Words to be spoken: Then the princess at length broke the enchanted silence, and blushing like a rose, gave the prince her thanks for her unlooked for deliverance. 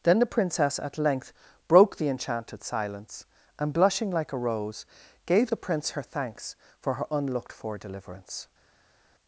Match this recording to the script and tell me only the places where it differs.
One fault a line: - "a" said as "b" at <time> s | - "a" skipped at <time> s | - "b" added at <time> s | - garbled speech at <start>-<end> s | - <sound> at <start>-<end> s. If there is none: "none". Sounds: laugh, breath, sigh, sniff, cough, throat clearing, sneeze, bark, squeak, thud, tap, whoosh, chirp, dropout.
none